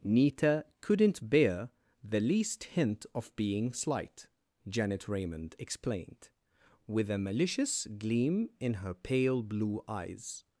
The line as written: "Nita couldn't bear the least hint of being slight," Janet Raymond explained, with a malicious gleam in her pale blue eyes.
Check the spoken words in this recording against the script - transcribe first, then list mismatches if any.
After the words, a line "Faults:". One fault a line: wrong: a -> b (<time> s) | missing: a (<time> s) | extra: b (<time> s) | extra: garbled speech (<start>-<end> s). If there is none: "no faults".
"Nita couldn't bear the least hint of being slight," Janet Raymond explained, with a malicious gleam in her pale blue eyes.
Faults:
no faults